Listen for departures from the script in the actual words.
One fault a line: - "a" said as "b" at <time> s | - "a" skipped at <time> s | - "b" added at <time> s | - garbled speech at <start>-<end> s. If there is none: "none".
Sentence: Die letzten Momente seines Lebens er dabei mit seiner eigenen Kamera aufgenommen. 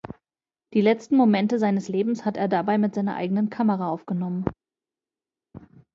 - "hat" added at 2.2 s